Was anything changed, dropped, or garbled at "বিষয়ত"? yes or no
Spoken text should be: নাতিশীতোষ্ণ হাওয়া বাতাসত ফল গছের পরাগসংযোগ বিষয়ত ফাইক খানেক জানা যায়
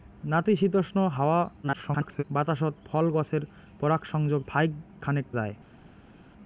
yes